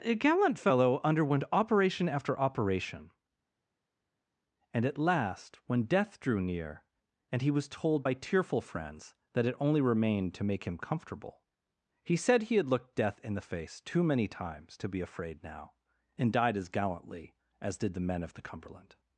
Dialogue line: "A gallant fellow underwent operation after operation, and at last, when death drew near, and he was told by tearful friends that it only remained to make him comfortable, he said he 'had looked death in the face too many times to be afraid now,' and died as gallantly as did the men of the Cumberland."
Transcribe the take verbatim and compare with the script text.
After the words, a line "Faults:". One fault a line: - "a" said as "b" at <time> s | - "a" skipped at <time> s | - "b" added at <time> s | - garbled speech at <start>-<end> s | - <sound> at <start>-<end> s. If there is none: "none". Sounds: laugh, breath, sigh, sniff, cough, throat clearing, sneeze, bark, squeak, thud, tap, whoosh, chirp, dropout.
"A gallant fellow underwent operation after operation, and at last, when death drew near, and he was told by tearful friends that it only remained to make him comfortable, he said he 'had looked death in the face too many times to be afraid now,' and died as gallantly as did the men of the Cumberland."
Faults:
none